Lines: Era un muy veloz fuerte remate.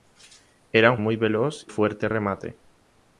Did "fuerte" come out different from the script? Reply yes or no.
no